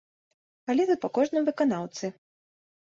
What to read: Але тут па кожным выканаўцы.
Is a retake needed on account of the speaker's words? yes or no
no